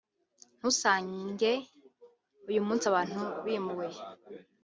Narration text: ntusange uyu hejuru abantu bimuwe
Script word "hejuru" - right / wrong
wrong